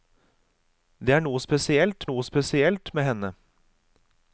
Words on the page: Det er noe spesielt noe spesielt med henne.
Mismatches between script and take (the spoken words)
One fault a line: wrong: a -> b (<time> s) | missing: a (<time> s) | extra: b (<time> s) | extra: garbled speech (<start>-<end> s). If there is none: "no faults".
no faults